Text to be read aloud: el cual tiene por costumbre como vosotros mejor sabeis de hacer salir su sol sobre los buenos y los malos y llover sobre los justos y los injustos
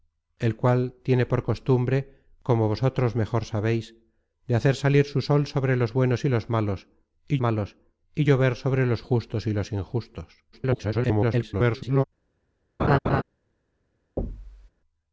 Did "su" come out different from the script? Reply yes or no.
no